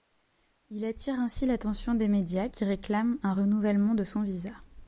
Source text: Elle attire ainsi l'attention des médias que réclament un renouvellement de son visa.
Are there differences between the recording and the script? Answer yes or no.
yes